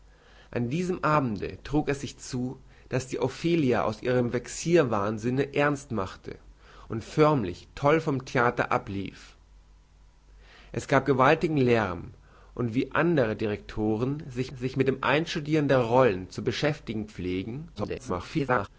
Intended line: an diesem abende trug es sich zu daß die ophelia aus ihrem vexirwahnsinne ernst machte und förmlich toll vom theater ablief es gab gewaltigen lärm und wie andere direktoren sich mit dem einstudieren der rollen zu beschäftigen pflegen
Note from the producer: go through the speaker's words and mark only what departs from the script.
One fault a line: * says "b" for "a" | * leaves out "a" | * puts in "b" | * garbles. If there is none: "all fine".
* puts in "sich"
* garbles